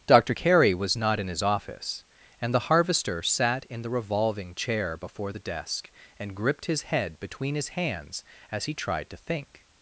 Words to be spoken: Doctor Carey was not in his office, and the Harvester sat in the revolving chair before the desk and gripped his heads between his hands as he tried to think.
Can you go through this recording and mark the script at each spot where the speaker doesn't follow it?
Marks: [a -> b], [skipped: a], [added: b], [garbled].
Doctor Carey was not in his office, and the Harvester sat in the revolving chair before the desk and gripped his [heads -> head] between his hands as he tried to think.